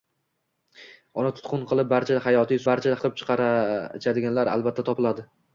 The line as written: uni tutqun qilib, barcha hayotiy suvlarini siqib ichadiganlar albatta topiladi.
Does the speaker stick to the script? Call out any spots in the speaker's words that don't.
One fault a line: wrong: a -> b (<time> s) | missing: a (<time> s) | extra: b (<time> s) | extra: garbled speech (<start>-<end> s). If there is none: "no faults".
wrong: suvlarini -> barcha (2.7 s)